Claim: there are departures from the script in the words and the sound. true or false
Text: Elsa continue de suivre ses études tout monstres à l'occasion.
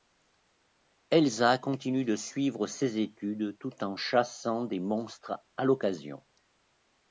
true